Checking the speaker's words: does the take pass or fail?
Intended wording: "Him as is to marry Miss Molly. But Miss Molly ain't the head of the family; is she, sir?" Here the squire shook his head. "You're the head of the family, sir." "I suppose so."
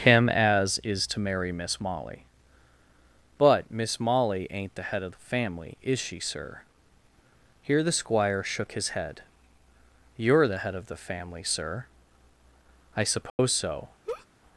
pass